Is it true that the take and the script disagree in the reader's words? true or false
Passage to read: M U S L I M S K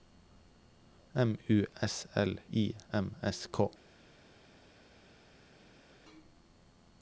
false